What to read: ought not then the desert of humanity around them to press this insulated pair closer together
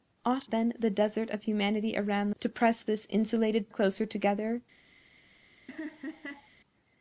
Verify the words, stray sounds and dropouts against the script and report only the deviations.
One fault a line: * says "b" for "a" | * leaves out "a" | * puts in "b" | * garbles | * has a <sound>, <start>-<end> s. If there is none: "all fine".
* leaves out "not"
* leaves out "them"
* leaves out "pair"
* has a laugh, 5.7-6.5 s